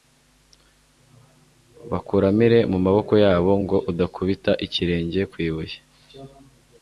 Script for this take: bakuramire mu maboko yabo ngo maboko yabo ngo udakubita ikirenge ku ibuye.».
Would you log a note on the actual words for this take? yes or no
yes